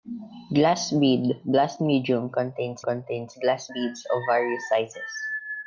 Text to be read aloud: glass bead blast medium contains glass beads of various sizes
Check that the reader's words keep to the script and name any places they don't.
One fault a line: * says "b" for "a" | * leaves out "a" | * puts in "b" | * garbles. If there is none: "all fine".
* puts in "contains"